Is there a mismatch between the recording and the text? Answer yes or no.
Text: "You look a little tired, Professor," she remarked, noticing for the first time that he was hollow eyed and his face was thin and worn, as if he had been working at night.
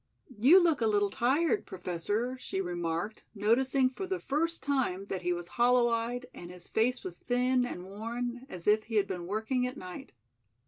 no